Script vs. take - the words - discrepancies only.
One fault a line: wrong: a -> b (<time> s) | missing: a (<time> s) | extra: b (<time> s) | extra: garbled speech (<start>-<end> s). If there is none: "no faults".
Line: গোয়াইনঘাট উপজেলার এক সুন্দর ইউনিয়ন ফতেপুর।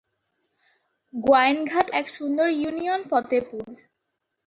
missing: উপজেলার (1.9 s)